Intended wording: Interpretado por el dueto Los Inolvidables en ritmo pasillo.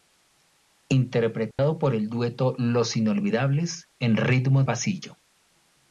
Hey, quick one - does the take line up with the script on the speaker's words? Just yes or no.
yes